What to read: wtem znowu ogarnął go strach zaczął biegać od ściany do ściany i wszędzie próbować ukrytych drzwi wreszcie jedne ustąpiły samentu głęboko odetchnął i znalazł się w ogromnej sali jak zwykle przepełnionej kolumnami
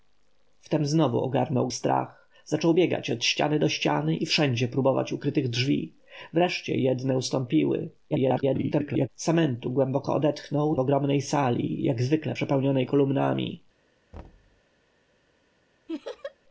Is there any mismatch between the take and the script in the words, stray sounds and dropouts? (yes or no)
yes